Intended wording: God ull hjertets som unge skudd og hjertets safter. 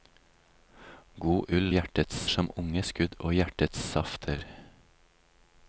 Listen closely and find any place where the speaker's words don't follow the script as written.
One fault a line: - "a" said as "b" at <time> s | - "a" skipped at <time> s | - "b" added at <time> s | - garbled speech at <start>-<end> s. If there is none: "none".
none